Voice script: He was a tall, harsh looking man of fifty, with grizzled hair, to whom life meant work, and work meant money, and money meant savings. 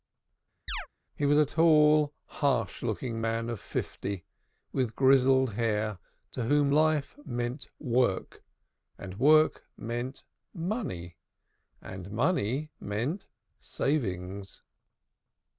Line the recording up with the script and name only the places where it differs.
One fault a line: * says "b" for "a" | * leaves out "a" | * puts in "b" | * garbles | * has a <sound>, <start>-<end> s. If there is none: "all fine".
* has a chirp, 0.7-0.9 s